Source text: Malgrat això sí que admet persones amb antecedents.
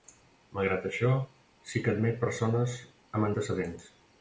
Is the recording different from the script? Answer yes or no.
no